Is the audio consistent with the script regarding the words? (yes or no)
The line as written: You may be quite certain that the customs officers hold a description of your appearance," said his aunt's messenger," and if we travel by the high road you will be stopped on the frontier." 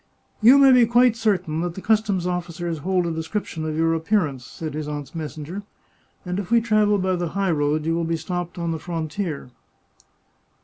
yes